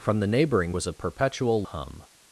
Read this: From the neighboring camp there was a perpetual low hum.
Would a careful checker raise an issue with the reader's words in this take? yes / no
yes